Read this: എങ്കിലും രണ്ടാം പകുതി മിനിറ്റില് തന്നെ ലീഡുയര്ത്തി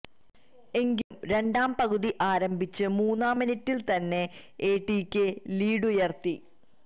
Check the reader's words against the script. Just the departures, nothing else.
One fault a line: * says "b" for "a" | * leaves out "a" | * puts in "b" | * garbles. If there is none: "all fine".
* puts in "ആരംഭിച്ച് മൂന്നാം"
* puts in "എടികെ"